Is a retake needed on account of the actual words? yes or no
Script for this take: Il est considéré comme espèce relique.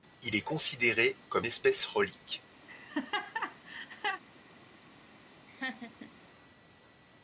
no